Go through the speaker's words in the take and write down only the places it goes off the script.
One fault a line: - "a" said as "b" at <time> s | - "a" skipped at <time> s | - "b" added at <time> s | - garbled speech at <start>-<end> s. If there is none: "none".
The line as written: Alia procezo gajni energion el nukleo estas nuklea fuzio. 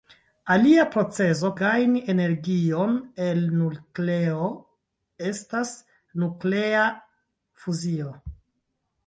none